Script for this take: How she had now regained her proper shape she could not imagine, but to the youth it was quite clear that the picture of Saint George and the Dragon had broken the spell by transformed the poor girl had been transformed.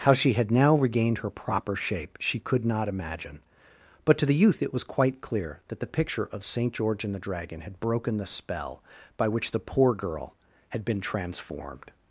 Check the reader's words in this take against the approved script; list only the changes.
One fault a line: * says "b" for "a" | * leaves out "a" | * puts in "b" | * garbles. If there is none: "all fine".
* says "which" for "transformed"